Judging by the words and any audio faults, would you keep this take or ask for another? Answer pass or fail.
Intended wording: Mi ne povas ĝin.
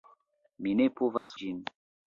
fail